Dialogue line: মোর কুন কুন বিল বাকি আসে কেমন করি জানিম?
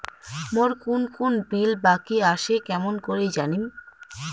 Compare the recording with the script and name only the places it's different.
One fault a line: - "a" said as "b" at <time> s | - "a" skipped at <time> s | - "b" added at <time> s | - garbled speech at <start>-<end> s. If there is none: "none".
none